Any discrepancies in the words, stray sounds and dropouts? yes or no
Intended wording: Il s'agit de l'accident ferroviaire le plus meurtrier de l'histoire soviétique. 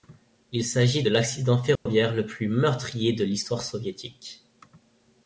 yes